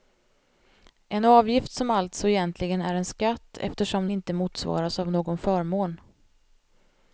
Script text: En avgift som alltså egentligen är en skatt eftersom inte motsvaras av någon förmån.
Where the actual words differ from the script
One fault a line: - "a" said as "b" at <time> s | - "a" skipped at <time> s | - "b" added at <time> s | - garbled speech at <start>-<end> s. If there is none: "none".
none